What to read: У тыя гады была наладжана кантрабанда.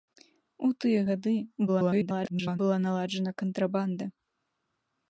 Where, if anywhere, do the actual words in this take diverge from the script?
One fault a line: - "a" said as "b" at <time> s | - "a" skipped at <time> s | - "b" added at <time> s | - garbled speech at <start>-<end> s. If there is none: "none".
- garbled speech at 1.7-2.6 s